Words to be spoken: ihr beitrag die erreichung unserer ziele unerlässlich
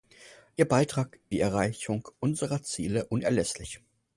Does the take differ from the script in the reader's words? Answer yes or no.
no